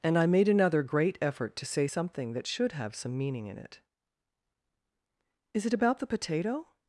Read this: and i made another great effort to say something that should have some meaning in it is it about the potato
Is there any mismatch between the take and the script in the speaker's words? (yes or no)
no